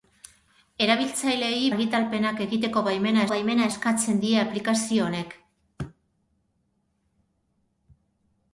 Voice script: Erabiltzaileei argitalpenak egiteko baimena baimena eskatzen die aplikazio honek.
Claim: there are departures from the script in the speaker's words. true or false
false